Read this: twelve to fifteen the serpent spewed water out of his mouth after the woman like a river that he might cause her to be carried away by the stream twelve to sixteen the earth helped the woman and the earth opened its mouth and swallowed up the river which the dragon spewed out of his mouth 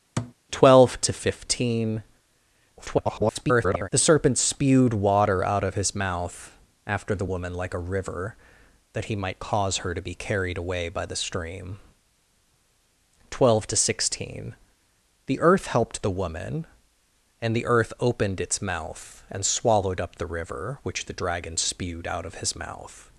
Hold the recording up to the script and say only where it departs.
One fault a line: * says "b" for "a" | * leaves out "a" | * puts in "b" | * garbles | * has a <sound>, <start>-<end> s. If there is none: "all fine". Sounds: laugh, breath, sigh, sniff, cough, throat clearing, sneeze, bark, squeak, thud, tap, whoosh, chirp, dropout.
* has a thud, 0.2-0.3 s
* garbles